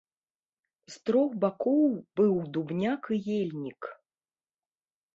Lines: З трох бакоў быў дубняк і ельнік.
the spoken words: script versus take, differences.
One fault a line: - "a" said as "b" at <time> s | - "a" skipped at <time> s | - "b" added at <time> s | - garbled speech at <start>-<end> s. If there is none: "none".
none